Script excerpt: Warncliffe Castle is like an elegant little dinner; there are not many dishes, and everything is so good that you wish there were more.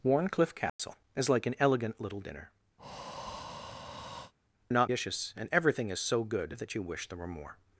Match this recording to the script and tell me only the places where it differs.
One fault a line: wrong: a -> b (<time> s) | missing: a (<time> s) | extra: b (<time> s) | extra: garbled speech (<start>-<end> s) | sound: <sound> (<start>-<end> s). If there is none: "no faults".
sound: dropout (0.7-0.8 s)
missing: there (2.5 s)
sound: breath (2.8-4.3 s)
missing: many (4.9 s)